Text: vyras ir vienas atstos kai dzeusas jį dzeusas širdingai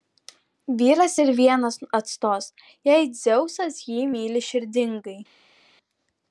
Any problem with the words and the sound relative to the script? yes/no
yes